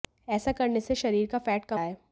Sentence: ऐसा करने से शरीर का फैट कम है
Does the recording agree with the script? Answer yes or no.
yes